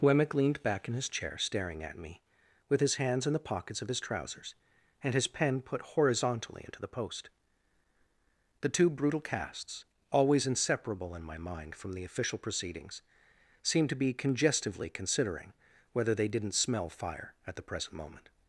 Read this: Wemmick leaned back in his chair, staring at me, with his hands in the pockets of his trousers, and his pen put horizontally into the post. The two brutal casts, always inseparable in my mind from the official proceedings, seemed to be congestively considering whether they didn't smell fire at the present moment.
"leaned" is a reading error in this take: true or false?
false